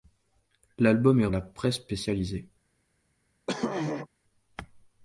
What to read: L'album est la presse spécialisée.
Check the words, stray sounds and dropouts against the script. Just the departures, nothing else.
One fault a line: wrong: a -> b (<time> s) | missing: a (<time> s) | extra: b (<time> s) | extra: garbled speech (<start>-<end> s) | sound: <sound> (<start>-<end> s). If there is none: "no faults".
sound: throat clearing (3.5-4.1 s)